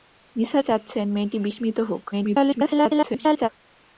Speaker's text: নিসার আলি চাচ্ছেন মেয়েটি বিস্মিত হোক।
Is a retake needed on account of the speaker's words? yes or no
yes